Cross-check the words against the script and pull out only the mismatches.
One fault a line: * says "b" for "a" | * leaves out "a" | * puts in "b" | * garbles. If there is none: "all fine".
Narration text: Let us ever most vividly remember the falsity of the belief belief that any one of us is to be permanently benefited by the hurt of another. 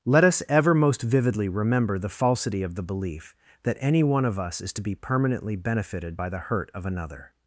* leaves out "belief"